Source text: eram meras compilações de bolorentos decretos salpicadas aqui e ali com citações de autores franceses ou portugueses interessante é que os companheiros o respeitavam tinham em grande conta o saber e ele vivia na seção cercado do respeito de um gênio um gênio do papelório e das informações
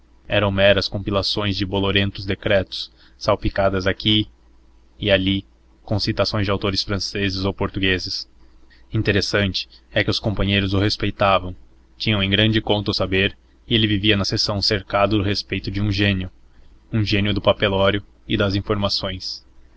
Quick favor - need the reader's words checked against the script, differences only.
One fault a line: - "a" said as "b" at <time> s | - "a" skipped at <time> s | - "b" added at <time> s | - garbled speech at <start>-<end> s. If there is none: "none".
none